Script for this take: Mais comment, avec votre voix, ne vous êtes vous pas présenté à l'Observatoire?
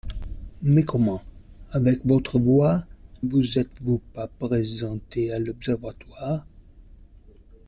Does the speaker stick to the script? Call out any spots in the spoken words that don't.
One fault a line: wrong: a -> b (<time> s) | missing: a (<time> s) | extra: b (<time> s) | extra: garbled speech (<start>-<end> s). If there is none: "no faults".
missing: ne (2.9 s)